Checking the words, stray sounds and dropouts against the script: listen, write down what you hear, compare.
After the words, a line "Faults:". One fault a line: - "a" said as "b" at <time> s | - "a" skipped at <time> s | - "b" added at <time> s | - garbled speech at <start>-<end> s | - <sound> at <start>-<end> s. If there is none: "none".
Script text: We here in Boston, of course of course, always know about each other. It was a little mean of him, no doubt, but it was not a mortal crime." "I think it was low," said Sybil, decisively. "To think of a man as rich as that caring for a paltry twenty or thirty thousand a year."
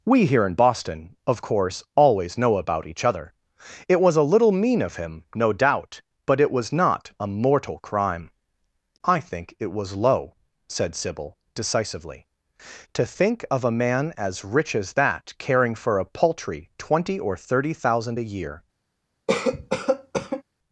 We here in Boston, of course, always know about each other. It was a little mean of him, no doubt, but it was not a mortal crime." "I think it was low," said Sybil, decisively. "To think of a man as rich as that caring for a paltry twenty or thirty thousand a year."
Faults:
- "of course" skipped at 1.8 s
- cough at 19.3-20.4 s